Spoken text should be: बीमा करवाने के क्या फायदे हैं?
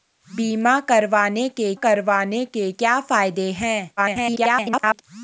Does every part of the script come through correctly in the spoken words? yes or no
no